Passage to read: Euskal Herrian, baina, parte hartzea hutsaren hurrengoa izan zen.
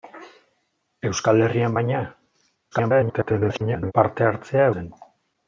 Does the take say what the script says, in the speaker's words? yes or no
no